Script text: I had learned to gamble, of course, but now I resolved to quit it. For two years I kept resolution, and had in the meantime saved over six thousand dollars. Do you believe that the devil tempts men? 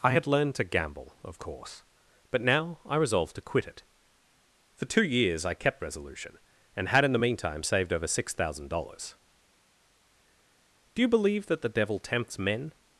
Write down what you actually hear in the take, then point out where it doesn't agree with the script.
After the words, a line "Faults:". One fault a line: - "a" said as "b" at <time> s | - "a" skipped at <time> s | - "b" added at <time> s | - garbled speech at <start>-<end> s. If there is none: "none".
I had learned to gamble, of course, but now I resolved to quit it. For two years I kept resolution, and had in the meantime saved over six thousand dollars. Do you believe that the devil tempts men?
Faults:
none